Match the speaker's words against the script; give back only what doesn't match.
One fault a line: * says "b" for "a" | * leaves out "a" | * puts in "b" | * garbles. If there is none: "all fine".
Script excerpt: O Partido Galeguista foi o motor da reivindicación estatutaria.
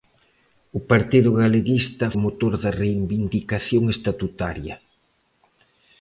* leaves out "foi"